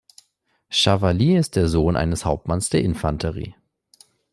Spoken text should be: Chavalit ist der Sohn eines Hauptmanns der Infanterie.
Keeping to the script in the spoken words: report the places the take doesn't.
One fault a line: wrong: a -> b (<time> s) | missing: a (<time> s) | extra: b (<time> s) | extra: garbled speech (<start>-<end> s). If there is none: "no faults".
no faults